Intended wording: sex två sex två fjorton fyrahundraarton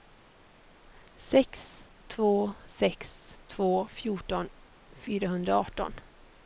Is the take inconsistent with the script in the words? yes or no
no